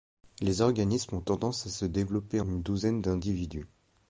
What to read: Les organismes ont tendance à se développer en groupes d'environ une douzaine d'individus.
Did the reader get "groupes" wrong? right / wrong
wrong